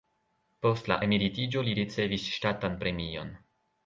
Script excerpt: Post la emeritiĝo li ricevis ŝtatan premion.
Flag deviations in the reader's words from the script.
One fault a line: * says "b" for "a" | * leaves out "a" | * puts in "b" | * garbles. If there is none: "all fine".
all fine